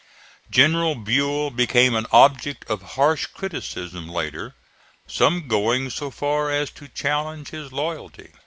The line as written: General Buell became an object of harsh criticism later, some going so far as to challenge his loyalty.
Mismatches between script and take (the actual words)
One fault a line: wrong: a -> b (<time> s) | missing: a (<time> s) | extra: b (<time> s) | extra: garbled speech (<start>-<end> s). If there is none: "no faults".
no faults